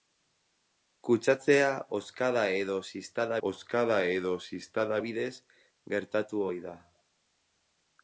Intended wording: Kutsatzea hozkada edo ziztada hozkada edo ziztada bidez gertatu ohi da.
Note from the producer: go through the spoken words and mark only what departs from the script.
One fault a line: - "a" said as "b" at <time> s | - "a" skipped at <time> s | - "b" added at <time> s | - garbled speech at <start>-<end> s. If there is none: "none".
none